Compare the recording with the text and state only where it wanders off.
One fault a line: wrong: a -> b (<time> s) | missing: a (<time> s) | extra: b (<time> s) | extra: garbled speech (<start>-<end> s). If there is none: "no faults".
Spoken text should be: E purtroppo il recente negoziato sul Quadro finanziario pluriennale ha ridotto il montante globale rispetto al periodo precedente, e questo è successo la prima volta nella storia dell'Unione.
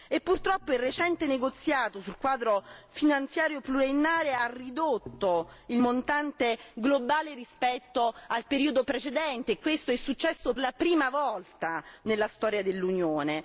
no faults